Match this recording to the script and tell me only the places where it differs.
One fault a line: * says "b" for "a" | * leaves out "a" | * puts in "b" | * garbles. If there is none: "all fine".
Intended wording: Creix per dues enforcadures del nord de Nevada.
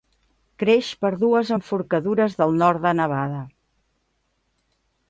all fine